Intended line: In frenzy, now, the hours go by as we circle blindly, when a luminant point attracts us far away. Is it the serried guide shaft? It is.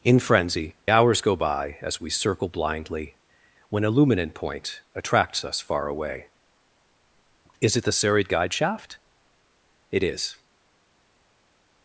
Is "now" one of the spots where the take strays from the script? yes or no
yes